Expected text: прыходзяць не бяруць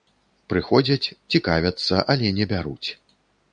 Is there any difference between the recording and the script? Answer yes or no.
yes